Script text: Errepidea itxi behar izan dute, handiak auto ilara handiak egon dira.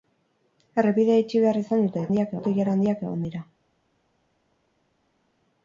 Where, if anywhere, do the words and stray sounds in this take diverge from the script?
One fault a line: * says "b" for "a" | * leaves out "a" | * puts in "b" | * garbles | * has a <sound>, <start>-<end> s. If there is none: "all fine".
all fine